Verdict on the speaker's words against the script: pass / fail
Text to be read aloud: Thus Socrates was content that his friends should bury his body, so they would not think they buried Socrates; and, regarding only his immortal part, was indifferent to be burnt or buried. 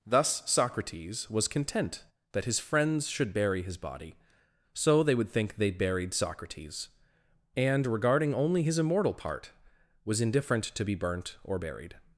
fail